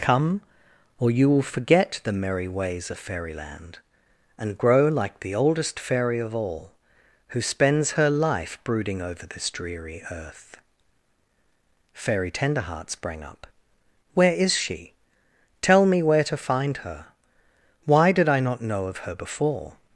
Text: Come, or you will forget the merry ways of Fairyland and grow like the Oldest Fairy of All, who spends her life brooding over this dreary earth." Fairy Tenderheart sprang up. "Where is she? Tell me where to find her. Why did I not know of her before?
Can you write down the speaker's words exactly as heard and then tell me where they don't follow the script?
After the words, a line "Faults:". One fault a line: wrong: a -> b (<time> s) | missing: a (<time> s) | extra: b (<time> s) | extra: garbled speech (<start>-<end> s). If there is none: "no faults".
Come, or you will forget the merry ways of Fairyland and grow like the Oldest Fairy of All, who spends her life brooding over this dreary earth." Fairy Tenderheart sprang up. "Where is she? Tell me where to find her. Why did I not know of her before?
Faults:
no faults